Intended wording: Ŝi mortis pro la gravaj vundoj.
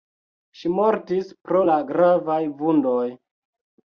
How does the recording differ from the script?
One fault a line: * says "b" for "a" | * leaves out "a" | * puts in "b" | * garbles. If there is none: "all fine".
all fine